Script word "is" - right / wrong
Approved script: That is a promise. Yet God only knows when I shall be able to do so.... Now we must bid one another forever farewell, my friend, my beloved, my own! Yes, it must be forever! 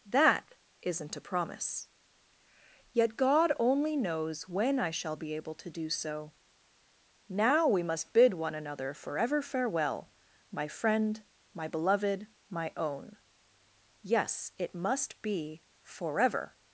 wrong